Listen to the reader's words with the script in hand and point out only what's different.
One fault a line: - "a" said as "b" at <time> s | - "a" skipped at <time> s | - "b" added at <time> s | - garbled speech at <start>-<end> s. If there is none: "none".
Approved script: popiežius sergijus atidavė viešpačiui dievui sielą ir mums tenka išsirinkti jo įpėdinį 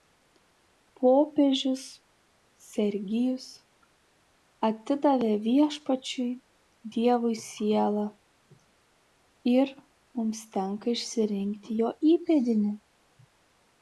none